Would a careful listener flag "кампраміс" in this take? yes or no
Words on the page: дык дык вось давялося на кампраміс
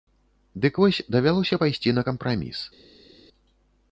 no